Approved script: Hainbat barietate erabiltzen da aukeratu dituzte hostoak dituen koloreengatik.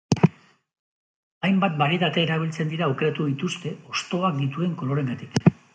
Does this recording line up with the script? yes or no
no